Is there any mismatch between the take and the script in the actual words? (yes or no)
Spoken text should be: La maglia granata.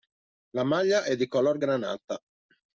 yes